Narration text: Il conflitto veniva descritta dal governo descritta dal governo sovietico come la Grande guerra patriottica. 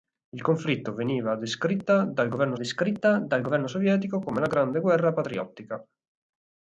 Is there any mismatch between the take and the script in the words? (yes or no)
no